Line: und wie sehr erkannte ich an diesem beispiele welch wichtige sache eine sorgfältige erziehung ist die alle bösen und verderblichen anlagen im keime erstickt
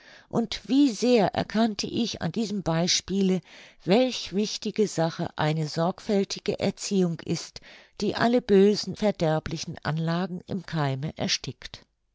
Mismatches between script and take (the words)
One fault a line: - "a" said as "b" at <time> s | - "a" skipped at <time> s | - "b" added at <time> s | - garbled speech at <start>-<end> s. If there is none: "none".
- "und" skipped at 8.9 s